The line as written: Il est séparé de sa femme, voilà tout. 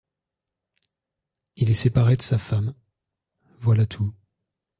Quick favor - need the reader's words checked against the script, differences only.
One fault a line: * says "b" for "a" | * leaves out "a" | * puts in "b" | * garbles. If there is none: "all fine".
all fine